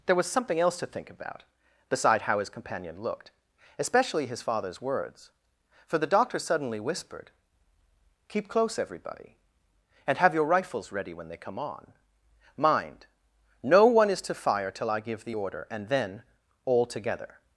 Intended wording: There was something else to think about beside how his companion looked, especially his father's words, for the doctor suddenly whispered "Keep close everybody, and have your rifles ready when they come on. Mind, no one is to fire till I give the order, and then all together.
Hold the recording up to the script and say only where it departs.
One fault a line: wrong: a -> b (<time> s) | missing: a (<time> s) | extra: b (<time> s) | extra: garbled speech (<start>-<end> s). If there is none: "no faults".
no faults